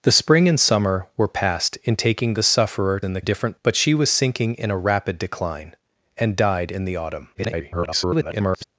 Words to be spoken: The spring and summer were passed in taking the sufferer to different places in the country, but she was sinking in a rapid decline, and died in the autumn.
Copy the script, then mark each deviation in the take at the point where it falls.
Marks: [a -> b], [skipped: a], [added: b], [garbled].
The spring and summer were passed in taking the sufferer [skipped: to different places] in the [country, -> different] but she was sinking in a rapid decline, and died in the autumn. [garbled]